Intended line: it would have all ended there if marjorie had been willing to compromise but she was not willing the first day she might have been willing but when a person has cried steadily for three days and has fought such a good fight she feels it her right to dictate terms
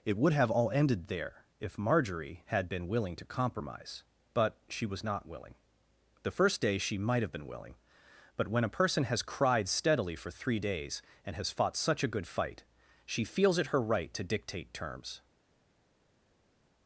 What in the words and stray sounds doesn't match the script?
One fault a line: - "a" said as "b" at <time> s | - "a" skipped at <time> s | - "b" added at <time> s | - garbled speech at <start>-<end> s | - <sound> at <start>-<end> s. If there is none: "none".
none